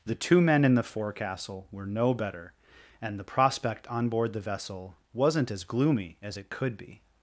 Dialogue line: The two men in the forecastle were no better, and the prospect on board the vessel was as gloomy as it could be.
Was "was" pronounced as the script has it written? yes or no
no